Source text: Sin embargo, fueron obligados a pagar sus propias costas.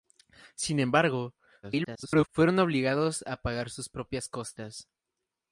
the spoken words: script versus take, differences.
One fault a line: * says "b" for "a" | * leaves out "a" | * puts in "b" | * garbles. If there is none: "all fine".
* garbles